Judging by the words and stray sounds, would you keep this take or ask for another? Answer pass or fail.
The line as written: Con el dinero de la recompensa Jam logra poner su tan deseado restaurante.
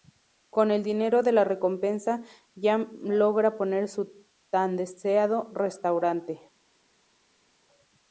pass